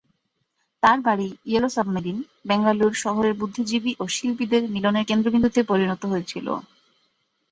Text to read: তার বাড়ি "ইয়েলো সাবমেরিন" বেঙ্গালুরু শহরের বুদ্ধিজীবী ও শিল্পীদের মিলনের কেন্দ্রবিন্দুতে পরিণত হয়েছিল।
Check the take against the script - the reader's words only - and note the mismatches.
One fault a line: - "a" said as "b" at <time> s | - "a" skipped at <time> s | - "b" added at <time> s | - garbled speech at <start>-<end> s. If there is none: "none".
none